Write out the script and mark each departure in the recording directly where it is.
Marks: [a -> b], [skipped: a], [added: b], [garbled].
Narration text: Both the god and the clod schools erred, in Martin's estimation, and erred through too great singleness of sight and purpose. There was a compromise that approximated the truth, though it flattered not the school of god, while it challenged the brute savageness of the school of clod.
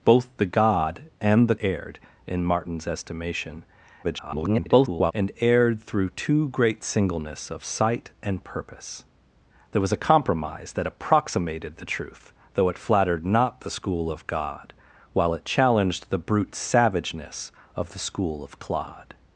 Both the god and the [skipped: clod schools] erred, in Martin's estimation, [garbled] and erred through too great singleness of sight and purpose. There was a compromise that approximated the truth, though it flattered not the school of god, while it challenged the brute savageness of the school of clod.